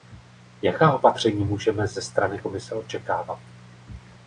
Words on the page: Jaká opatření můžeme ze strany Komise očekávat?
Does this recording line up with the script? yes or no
yes